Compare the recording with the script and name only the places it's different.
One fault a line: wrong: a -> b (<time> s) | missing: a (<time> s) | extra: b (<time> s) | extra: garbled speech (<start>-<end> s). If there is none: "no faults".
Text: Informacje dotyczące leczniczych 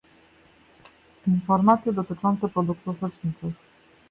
extra: produktów (2.5 s)